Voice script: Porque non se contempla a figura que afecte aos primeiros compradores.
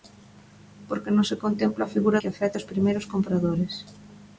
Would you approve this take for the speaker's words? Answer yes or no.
yes